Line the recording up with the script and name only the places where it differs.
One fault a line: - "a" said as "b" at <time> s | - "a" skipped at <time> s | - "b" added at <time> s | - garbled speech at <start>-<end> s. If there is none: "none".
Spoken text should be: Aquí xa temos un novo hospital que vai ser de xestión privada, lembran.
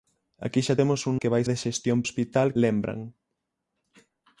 - "novo hospital" skipped at 1.1 s
- "ser" skipped at 1.4 s
- "privada" said as "hospital" at 2.1 s